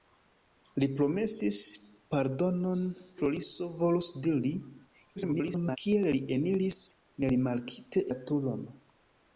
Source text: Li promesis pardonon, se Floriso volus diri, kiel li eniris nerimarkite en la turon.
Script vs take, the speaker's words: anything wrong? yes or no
yes